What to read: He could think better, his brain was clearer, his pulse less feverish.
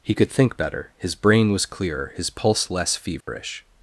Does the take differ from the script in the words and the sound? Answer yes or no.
yes